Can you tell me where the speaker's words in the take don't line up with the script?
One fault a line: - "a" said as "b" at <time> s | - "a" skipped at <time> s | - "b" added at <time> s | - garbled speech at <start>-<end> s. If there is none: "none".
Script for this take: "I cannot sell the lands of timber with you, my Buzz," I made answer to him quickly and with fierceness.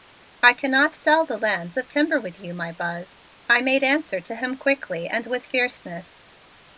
none